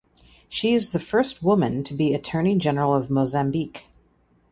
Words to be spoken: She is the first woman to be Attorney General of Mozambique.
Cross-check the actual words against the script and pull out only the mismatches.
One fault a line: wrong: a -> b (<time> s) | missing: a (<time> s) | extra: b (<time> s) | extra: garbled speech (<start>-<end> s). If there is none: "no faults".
no faults